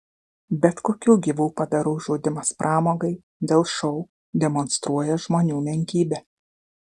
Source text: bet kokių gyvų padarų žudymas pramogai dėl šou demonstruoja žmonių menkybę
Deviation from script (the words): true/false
false